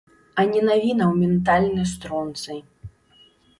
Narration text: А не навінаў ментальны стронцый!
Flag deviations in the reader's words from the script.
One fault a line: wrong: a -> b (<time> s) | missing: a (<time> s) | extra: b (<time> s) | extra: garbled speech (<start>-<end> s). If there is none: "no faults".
no faults